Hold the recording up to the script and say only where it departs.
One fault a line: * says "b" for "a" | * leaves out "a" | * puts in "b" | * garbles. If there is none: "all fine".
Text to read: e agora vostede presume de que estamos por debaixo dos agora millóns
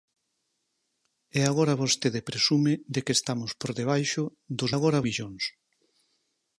all fine